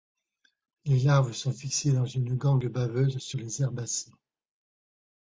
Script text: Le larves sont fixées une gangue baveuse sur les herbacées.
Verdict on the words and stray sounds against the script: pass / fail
fail